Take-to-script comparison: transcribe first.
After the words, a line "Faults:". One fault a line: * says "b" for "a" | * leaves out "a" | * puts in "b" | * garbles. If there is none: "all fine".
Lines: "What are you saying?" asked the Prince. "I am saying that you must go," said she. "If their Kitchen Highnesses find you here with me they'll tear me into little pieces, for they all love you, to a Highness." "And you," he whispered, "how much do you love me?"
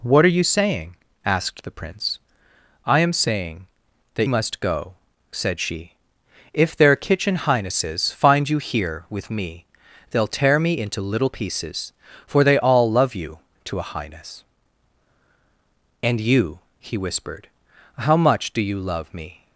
"What are you saying?" asked the Prince. "I am saying that must go," said she. "If their Kitchen Highnesses find you here with me they'll tear me into little pieces, for they all love you, to a Highness." "And you," he whispered, "how much do you love me?"
Faults:
* leaves out "you"